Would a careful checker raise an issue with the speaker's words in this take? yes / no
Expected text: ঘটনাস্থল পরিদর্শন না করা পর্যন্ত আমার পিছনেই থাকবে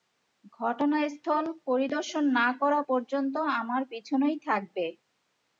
no